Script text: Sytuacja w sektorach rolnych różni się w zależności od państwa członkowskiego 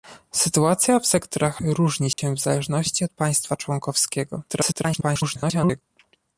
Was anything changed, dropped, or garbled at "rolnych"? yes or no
yes